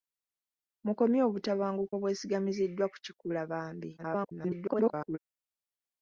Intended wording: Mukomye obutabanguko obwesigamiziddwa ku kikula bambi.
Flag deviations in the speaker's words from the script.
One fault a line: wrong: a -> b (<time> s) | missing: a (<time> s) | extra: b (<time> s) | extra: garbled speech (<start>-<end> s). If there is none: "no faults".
extra: garbled speech (4.0-5.2 s)